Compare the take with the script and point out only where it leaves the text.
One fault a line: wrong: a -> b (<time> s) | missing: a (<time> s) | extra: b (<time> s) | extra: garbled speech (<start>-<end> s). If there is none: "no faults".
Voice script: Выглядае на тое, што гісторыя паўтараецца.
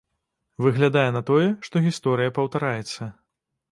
no faults